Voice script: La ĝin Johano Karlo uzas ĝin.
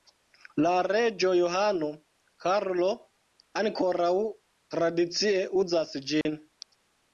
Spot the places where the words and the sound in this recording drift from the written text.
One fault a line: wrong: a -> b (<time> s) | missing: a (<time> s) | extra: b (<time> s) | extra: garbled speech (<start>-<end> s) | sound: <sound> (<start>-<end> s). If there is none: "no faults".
wrong: ĝin -> reĝo (0.8 s)
extra: ankoraŭ tradicie (3.6 s)
sound: dropout (6.2-6.3 s)